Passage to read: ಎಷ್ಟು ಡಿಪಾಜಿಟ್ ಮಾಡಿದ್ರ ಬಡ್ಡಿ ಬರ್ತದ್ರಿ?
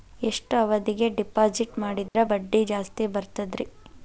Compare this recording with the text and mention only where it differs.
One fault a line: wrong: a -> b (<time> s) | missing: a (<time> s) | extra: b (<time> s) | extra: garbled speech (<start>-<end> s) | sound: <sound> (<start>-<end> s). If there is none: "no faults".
extra: ಅವಧಿಗೆ (0.6 s)
sound: dropout (2.1-2.1 s)
extra: ಜಾಸ್ತಿ (2.6 s)